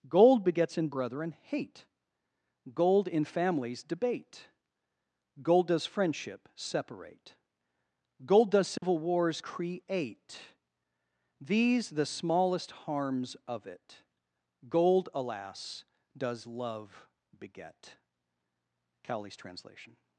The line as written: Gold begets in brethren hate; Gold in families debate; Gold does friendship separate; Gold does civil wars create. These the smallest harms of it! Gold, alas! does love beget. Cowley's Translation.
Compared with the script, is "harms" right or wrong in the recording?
right